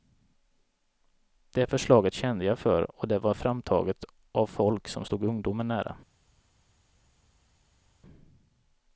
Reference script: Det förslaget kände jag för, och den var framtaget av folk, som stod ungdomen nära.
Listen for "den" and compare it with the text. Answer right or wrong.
wrong